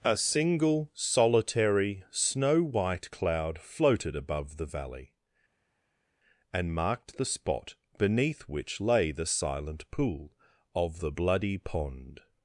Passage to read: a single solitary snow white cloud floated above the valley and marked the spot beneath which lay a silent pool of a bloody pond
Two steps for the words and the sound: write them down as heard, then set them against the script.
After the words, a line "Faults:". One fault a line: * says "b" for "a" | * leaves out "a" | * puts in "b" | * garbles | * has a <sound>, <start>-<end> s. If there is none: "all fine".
a single solitary snow white cloud floated above the valley and marked the spot beneath which lay the silent pool of the bloody pond
Faults:
* says "the" for "a"
* says "the" for "a"